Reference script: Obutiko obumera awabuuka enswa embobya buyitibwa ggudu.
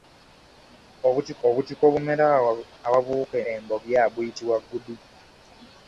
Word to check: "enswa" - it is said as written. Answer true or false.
false